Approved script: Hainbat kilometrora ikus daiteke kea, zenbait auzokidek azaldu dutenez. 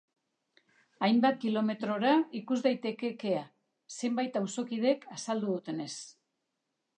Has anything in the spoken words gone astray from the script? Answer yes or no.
no